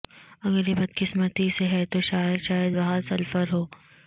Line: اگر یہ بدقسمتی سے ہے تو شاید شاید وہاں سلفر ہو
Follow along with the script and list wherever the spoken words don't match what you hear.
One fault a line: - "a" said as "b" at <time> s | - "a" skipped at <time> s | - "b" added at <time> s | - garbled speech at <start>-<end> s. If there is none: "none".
none